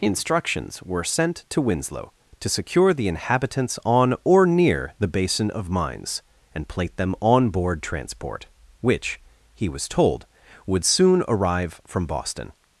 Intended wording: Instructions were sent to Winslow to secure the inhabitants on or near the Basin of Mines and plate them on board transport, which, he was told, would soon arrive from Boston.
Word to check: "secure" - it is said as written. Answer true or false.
true